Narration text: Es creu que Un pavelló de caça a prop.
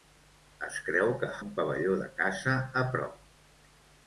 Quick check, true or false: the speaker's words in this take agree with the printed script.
true